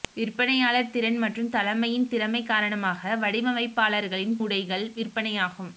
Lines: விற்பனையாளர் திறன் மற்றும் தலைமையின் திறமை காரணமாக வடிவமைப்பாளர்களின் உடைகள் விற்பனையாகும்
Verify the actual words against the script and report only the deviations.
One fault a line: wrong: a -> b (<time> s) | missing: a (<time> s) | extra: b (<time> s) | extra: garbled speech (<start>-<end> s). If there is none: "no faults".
no faults